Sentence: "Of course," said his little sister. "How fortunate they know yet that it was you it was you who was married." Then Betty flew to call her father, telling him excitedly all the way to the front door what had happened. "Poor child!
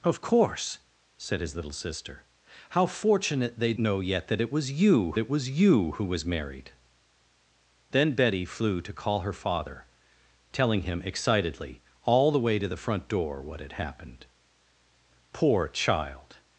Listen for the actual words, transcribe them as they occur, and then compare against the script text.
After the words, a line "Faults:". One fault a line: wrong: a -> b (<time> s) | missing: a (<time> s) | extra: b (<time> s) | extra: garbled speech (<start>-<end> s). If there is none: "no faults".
"Of course," said his little sister. "How fortunate they know yet that it was you it was you who was married." Then Betty flew to call her father, telling him excitedly all the way to the front door what had happened. "Poor child!
Faults:
no faults